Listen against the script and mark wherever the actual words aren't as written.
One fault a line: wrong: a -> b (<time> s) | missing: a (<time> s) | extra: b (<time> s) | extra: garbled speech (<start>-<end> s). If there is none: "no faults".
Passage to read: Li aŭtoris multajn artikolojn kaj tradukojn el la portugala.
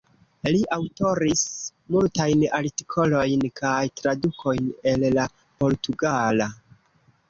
no faults